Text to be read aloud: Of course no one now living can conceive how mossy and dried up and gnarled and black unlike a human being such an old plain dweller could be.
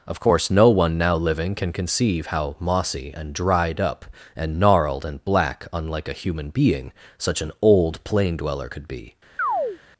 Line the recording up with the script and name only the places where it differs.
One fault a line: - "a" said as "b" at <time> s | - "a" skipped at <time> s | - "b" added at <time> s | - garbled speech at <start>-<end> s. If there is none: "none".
none